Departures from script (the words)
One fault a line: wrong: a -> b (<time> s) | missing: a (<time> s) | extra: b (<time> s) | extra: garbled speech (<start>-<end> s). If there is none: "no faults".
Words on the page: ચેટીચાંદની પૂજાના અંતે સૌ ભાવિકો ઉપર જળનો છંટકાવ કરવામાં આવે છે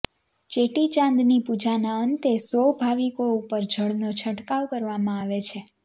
no faults